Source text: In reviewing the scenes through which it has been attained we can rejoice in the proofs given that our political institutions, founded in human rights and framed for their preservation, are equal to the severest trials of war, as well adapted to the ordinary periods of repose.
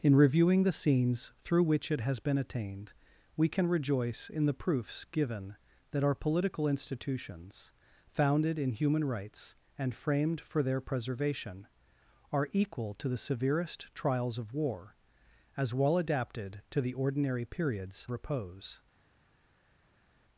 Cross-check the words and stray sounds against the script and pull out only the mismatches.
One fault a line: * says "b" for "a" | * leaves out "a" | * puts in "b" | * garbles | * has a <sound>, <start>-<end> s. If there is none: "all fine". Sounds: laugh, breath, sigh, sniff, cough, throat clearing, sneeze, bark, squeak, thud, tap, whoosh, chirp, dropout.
* leaves out "of"